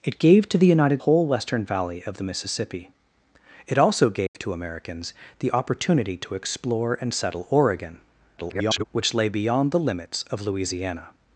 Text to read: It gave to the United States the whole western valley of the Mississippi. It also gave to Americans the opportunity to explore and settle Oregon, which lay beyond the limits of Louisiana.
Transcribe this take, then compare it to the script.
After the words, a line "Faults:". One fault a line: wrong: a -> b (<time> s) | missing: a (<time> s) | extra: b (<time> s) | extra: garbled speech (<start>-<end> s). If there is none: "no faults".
It gave to the United Whole western valley of the Mississippi. It also gave to Americans the opportunity to explore and settle Oregon, [garbled] which lay beyond the limits of Louisiana.
Faults:
missing: States the (1.0 s)
extra: garbled speech (8.4-8.8 s)